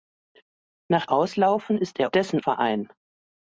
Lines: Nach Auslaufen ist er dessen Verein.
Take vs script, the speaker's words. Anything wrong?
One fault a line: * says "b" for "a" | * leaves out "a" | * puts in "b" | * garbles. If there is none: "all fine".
all fine